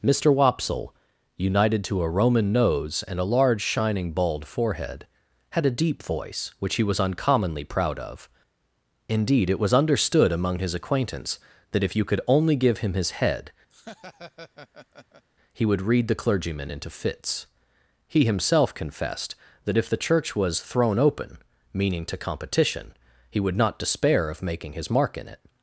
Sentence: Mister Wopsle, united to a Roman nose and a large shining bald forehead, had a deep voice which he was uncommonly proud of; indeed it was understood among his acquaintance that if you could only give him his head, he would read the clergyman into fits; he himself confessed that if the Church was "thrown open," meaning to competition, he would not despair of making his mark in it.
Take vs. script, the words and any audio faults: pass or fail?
fail